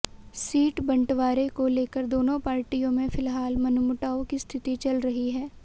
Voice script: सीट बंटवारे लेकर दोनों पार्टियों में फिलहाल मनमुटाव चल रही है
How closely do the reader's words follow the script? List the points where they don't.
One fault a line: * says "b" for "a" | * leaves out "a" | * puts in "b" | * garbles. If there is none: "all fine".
* puts in "को"
* puts in "की स्थिति"